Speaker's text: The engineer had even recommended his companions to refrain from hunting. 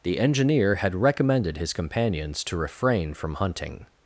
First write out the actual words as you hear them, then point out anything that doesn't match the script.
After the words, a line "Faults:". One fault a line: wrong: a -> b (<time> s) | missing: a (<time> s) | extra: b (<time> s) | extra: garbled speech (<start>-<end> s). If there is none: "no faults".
The engineer had recommended his companions to refrain from hunting.
Faults:
missing: even (0.9 s)